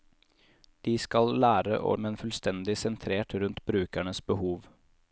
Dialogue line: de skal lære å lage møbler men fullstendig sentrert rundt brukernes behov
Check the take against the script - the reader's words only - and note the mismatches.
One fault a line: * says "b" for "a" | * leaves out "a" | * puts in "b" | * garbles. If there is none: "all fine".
* leaves out "lage møbler"